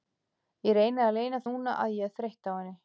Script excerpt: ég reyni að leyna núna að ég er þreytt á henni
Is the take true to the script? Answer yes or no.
yes